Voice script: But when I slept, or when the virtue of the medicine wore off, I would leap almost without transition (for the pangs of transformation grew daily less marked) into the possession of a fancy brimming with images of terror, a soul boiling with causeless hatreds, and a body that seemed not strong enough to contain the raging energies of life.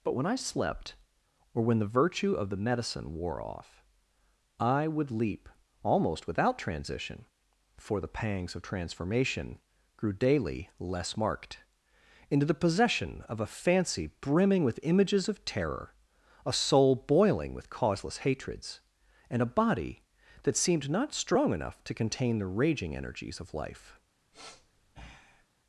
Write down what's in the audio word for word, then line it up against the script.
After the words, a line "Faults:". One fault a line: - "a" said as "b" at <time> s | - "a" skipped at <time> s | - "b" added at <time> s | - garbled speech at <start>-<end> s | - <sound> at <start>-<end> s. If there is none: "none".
But when I slept, or when the virtue of the medicine wore off, I would leap almost without transition (for the pangs of transformation grew daily less marked) into the possession of a fancy brimming with images of terror, a soul boiling with causeless hatreds, and a body that seemed not strong enough to contain the raging energies of life.
Faults:
- sniff at 24.3-25.5 s